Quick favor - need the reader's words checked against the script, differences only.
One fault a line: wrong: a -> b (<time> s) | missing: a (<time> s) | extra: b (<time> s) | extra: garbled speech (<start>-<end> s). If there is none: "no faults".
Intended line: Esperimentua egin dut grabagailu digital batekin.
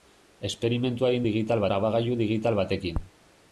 wrong: dut -> digital (1.3 s)